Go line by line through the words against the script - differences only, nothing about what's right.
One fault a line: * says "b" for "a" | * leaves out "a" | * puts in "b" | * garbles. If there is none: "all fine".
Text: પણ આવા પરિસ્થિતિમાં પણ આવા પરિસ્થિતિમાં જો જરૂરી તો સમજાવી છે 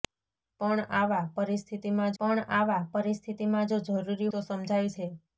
all fine